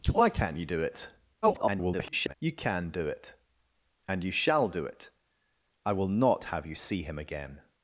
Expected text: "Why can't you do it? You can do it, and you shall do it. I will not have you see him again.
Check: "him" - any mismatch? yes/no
no